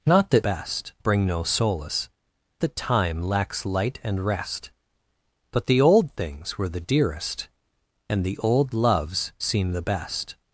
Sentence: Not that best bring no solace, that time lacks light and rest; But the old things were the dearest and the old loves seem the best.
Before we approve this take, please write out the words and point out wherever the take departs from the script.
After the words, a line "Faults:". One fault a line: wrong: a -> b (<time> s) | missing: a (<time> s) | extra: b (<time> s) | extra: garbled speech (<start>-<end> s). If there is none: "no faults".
Not that best bring no solace, that time lacks light and rest; But the old things were the dearest and the old loves seem the best.
Faults:
no faults